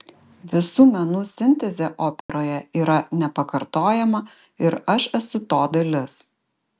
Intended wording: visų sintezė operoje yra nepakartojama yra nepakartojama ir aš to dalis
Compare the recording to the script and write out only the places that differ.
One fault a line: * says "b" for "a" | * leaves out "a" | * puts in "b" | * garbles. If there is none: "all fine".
* puts in "menų"
* leaves out "yra nepakartojama"
* puts in "esu"